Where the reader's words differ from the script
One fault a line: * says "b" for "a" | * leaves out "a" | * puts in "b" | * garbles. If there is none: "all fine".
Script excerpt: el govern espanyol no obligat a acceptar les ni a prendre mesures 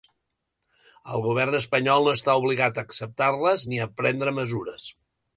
* puts in "està"